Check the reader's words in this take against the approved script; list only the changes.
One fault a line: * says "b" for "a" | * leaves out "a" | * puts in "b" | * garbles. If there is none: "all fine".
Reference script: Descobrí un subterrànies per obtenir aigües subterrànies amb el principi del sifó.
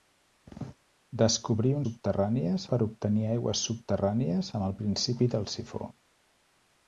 all fine